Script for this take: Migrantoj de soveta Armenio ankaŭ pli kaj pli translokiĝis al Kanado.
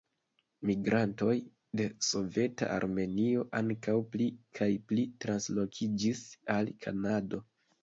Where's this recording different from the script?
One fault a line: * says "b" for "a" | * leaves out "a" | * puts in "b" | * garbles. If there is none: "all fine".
all fine